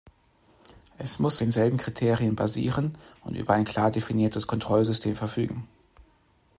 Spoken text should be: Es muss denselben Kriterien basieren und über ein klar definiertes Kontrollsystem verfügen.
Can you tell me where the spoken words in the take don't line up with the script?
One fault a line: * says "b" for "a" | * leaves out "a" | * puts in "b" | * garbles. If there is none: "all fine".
all fine